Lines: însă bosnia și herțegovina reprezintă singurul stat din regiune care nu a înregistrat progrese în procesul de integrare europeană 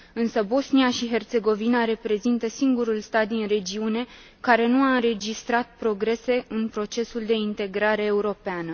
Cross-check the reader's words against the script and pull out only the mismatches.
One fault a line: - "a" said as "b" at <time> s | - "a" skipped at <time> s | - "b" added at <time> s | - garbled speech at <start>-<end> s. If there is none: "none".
none